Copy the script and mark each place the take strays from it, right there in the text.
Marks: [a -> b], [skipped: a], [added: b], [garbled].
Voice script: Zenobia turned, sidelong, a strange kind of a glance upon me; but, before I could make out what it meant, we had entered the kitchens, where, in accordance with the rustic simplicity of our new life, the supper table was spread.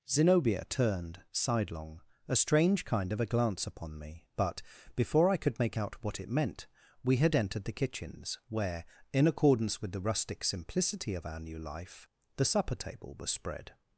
Zenobia turned, sidelong, a strange kind of a glance upon me; but, before I could make out what it meant, we had entered the kitchens, where, in accordance with the rustic simplicity of our new life, the supper table was spread.